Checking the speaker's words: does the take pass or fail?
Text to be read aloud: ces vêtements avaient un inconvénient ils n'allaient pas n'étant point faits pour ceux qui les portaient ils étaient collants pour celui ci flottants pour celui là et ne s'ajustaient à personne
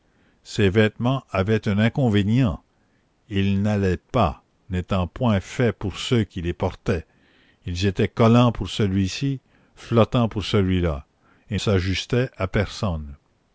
fail